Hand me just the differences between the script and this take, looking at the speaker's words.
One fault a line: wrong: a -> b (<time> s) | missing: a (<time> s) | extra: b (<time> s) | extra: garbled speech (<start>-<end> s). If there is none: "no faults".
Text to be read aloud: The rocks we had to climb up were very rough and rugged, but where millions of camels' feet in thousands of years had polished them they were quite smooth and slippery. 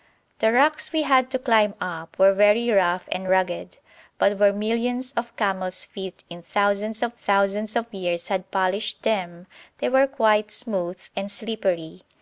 extra: thousands of (7.1 s)